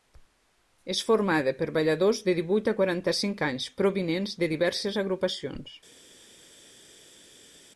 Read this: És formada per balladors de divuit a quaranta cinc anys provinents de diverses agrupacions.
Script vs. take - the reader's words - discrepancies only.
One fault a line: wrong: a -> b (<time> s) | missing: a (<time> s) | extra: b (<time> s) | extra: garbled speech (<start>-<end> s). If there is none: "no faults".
no faults